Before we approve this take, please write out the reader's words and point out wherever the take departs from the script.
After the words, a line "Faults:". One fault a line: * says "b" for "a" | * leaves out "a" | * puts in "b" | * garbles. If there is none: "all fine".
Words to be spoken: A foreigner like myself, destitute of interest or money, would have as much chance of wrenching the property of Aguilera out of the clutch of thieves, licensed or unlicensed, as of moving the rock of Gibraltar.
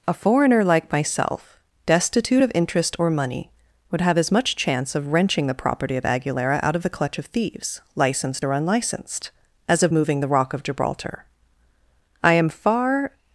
A foreigner like myself, destitute of interest or money, would have as much chance of wrenching the property of Aguilera out of the clutch of thieves, licensed or unlicensed, as of moving the rock of Gibraltar. I am far
Faults:
* puts in "I am far"